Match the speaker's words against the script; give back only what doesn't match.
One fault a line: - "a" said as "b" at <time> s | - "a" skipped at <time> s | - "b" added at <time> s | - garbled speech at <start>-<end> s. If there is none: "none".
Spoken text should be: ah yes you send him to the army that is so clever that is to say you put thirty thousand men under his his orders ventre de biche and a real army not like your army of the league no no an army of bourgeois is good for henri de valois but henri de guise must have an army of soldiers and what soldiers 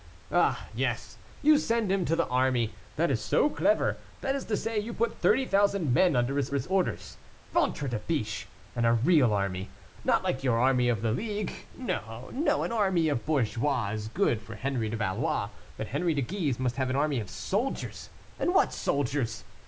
none